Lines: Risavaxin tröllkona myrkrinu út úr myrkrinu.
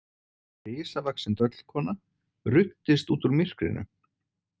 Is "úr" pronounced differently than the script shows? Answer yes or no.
no